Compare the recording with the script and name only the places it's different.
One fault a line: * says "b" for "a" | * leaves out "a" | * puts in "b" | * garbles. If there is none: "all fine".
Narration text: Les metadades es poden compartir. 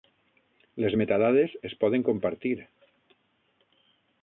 all fine